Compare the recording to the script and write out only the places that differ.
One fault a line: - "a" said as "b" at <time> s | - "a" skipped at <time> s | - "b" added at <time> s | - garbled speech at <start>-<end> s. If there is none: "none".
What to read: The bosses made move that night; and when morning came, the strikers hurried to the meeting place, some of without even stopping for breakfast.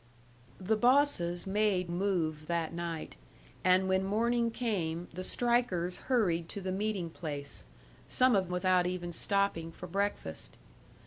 none